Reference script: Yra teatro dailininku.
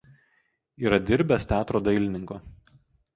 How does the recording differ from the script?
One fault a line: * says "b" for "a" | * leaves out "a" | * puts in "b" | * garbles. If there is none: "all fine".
* puts in "dirbęs"